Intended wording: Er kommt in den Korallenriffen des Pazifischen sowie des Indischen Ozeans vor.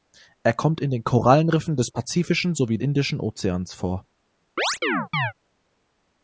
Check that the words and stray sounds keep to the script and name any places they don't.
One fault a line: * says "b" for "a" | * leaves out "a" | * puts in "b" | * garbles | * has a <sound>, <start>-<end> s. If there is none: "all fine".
* leaves out "des"
* has a chirp, 4.6-5.3 s